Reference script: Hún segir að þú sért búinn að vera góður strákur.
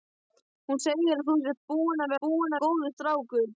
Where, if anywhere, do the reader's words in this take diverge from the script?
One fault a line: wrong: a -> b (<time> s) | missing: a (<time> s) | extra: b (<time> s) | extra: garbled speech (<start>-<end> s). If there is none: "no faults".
wrong: vera -> búinn (2.3 s)